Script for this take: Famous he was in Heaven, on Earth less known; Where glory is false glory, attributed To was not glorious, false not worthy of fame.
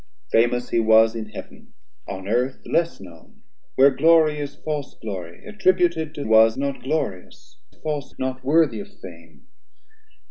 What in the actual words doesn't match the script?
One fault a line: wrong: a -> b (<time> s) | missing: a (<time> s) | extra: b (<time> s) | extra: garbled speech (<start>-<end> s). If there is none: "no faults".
no faults